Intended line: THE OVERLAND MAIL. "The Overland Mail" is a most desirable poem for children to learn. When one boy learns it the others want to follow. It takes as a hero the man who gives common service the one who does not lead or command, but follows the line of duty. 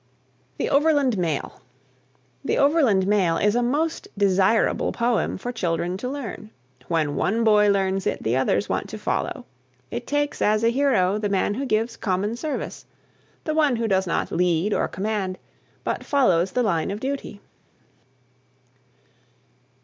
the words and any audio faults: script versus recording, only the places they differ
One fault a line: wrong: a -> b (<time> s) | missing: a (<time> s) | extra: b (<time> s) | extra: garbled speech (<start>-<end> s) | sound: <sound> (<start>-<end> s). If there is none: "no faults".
no faults